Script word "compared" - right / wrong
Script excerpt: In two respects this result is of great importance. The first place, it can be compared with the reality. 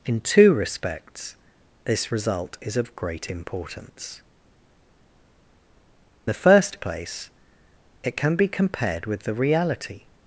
right